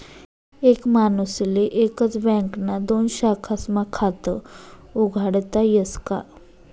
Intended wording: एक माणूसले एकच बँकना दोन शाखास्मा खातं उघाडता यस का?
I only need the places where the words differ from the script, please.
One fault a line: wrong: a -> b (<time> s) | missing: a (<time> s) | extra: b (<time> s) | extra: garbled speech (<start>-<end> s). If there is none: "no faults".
no faults